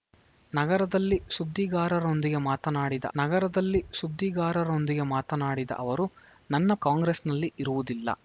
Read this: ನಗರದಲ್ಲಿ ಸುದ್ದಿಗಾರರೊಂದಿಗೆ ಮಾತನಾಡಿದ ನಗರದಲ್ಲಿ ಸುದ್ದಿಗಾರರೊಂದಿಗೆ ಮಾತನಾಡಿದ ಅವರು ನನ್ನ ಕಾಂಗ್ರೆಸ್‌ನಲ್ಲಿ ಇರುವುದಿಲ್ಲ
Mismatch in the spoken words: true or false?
false